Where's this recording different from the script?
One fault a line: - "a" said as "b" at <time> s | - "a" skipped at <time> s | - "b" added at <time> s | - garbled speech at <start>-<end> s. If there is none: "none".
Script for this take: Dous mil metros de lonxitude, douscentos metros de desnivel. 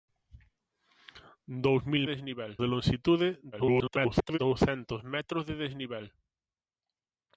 - "metros" said as "desnivel" at 2.1 s
- garbled speech at 3.5-4.4 s